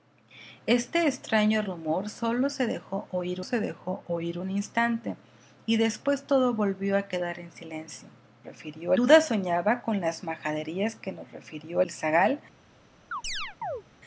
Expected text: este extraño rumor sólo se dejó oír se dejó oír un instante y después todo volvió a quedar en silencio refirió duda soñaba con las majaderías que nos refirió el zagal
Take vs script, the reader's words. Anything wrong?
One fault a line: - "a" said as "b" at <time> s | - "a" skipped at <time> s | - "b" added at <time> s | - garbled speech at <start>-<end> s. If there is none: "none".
none